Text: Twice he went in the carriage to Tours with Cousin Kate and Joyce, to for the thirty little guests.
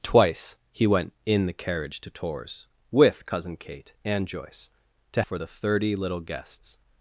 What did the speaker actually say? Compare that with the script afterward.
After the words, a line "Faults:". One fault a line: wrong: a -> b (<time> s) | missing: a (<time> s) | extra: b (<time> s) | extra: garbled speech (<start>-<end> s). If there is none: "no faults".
Twice he went in the carriage to Tours with Cousin Kate and Joyce, to for the thirty little guests.
Faults:
no faults